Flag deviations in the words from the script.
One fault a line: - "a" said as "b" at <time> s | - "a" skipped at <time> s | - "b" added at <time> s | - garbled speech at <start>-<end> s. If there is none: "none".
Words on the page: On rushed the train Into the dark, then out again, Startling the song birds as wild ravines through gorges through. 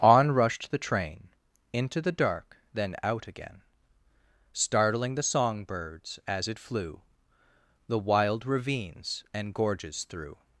- "it flew The" added at 6.5 s
- "through" said as "and" at 9.3 s